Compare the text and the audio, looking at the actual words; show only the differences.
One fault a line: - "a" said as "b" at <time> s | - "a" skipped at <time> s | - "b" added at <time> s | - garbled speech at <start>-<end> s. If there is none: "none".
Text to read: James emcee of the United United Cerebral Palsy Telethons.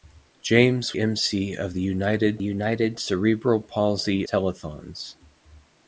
none